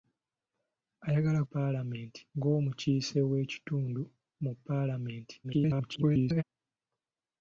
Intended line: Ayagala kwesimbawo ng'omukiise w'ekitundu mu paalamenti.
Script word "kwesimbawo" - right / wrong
wrong